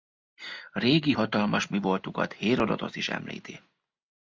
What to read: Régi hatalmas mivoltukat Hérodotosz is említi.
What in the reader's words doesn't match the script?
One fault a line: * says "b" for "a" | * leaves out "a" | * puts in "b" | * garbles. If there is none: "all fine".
all fine